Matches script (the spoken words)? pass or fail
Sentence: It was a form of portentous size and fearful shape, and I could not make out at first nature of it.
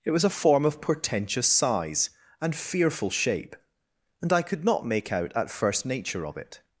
pass